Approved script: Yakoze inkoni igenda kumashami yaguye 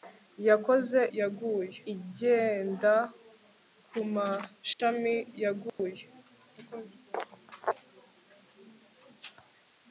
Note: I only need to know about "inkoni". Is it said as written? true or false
false